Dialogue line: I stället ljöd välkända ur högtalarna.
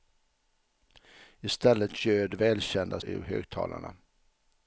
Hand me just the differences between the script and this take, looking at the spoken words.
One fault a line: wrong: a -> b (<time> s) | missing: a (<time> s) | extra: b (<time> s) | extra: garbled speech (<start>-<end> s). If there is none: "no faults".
no faults